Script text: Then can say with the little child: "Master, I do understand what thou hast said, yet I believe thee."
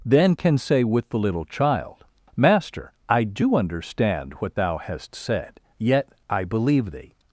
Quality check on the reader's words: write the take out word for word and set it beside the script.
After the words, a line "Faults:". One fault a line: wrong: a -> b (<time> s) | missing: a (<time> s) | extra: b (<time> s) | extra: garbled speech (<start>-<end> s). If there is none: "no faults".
Then can say with the little child: "Master, I do understand what thou hast said, yet I believe thee."
Faults:
no faults